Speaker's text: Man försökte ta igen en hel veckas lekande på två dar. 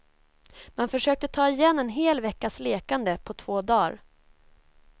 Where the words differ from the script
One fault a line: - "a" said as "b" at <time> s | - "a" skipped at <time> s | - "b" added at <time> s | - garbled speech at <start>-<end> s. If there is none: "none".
none